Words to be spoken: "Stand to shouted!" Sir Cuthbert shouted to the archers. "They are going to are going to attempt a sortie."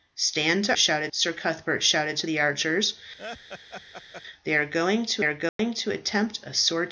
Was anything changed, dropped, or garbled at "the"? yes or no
no